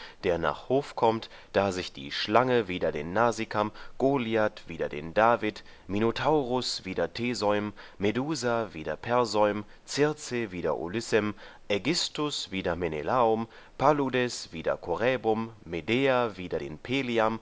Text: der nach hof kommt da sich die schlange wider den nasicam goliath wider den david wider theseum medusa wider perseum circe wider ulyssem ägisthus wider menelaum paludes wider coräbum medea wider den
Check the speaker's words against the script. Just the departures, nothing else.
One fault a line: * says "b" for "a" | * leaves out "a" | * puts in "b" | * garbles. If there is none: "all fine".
* puts in "minotaurus"